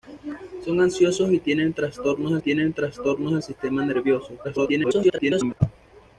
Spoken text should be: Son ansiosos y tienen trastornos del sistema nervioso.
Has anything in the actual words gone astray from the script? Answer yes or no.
yes